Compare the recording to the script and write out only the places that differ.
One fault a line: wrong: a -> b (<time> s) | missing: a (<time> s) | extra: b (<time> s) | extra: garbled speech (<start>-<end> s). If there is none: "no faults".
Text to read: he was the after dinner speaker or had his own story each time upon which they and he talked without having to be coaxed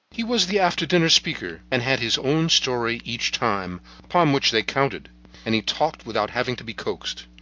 wrong: or -> and (1.7 s)
extra: counted (4.6 s)